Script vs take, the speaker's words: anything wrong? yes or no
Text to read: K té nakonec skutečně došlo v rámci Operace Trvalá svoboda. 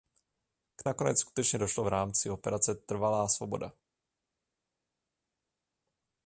yes